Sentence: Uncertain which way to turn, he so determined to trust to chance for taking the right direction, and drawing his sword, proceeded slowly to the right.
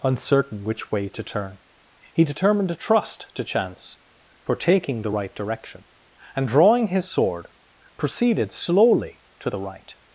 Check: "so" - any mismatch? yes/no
yes